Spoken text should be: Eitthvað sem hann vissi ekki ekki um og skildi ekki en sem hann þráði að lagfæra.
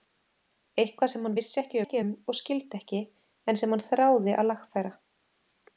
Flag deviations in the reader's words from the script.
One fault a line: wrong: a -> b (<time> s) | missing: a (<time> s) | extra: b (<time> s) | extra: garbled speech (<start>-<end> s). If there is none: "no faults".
no faults